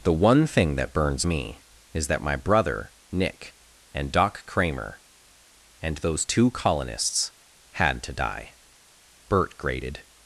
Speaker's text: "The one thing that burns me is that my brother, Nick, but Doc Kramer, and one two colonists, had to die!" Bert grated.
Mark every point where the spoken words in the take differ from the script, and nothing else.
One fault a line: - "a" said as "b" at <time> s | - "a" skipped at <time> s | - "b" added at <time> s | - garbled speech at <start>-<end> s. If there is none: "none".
- "but" said as "and" at 3.9 s
- "one" said as "those" at 6.0 s